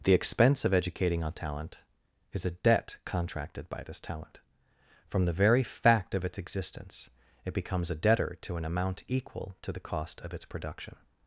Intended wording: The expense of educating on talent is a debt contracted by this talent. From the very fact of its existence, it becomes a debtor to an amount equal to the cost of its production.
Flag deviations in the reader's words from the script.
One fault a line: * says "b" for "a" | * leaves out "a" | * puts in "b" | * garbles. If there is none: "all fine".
all fine